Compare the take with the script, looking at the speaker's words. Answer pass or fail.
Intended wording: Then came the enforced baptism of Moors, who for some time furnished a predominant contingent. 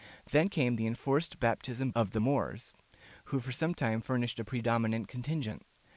fail